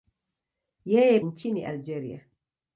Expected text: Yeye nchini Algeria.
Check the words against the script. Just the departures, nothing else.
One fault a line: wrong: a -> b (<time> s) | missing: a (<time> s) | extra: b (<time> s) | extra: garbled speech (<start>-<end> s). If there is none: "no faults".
no faults